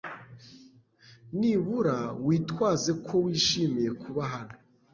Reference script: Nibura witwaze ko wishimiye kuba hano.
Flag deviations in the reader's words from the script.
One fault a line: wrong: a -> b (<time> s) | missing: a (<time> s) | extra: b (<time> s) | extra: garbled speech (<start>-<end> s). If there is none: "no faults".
no faults